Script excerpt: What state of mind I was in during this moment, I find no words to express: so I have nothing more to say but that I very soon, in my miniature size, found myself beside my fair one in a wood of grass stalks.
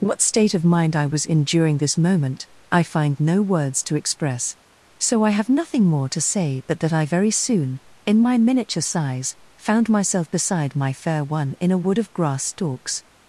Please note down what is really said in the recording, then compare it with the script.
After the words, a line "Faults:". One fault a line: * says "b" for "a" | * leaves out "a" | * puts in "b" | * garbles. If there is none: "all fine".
What state of mind I was in during this moment, I find no words to express: so I have nothing more to say but that I very soon, in my miniature size, found myself beside my fair one in a wood of grass stalks.
Faults:
all fine